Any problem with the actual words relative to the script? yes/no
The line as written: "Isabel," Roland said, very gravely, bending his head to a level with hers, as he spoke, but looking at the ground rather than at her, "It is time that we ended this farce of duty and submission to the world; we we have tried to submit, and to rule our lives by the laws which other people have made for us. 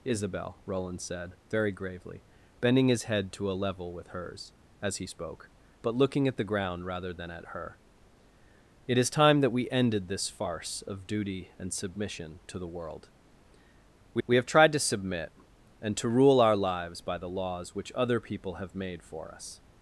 no